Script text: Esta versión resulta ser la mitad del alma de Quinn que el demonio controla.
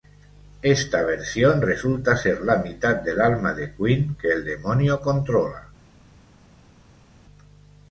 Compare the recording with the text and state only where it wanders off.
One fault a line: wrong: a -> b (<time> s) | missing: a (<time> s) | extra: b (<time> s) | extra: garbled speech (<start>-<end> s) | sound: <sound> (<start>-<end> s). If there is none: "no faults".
no faults